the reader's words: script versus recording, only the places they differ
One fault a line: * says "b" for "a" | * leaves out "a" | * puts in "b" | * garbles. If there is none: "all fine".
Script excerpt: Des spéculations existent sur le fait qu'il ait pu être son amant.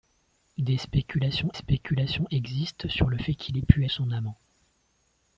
* puts in "spéculations"
* leaves out "être"